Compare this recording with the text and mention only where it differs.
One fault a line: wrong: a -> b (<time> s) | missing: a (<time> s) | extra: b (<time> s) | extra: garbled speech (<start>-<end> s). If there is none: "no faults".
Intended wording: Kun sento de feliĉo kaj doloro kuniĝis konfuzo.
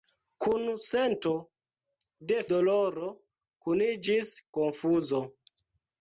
missing: feliĉo kaj (2.4 s)